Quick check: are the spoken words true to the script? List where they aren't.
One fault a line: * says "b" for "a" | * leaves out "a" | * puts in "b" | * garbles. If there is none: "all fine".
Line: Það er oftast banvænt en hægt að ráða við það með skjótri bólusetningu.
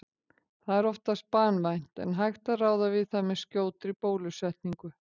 all fine